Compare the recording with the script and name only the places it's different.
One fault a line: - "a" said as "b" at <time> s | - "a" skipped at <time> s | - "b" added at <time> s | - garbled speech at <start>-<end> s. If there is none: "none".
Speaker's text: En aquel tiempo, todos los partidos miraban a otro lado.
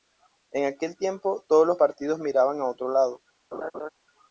none